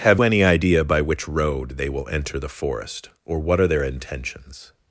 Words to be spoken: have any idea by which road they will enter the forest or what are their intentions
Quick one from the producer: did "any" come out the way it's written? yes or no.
yes